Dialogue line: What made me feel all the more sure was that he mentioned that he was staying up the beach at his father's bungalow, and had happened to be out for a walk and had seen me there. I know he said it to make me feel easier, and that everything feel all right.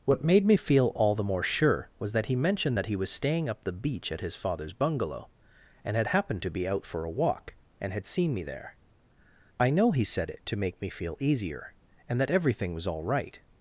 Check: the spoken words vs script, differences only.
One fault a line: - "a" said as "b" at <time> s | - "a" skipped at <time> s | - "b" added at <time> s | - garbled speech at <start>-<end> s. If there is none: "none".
- "feel" said as "was" at 12.7 s